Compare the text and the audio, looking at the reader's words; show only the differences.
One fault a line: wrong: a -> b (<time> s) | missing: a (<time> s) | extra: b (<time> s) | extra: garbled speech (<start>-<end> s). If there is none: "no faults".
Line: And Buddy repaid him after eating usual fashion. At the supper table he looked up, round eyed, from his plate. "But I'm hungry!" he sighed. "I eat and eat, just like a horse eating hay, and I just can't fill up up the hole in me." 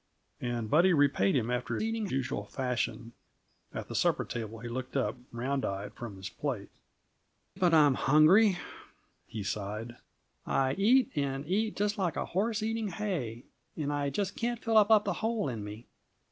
no faults